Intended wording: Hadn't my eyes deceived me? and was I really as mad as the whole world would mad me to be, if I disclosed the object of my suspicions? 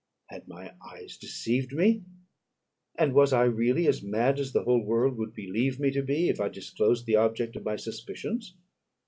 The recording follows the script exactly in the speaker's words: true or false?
false